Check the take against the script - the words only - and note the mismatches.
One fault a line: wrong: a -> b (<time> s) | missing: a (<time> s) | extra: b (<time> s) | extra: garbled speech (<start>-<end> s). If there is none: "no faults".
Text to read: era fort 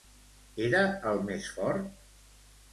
extra: el més (1.1 s)